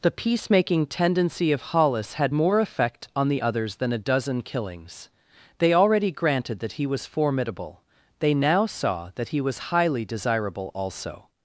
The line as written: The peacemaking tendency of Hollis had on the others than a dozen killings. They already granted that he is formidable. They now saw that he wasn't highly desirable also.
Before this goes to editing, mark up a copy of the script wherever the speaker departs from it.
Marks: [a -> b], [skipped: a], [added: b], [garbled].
The peacemaking tendency of Hollis had [added: more effect] on the others than a dozen killings. They already granted that he [is -> was] formidable. They now saw that he [wasn't -> was] highly desirable also.